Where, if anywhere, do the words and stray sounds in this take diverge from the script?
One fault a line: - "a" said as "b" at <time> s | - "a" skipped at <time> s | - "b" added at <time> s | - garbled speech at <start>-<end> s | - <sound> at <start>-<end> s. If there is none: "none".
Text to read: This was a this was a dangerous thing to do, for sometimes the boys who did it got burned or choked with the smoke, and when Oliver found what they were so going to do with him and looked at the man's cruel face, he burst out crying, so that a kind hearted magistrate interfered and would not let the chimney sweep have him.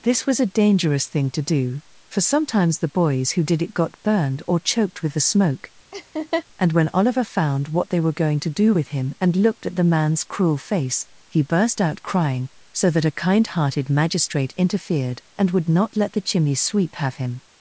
- "this was a" skipped at 0.6 s
- laugh at 5.9-6.4 s
- "so" skipped at 8.1 s